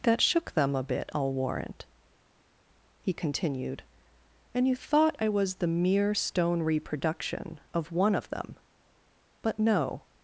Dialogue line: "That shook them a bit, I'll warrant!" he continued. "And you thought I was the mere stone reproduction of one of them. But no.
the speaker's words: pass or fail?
pass